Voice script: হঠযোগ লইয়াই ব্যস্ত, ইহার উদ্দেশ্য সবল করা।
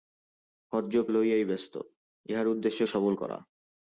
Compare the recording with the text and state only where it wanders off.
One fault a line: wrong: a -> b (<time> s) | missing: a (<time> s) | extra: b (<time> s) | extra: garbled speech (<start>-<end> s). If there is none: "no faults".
no faults